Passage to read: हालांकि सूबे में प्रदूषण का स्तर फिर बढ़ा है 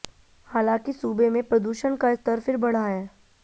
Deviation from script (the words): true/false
false